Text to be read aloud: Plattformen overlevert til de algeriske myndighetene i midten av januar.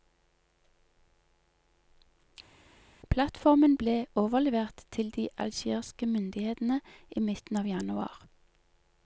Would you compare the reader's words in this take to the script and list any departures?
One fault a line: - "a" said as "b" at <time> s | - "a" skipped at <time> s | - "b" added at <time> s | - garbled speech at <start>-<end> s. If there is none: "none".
- "ble" added at 3.8 s